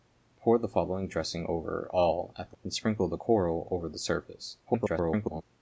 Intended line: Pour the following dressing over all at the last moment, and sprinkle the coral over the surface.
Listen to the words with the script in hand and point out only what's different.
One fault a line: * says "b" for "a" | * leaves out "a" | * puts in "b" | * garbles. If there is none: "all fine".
* leaves out "last moment"
* garbles